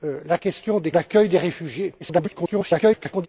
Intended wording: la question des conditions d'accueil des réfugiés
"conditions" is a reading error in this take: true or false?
true